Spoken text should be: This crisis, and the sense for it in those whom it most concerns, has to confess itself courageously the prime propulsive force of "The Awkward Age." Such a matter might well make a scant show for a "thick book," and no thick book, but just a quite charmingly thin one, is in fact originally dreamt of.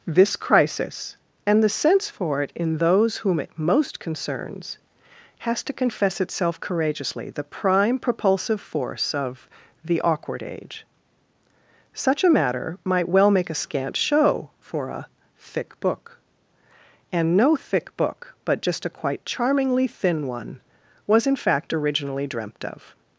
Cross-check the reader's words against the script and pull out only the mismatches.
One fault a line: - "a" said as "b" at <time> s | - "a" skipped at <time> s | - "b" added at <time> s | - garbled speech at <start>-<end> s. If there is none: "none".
- "is" said as "was" at 21.1 s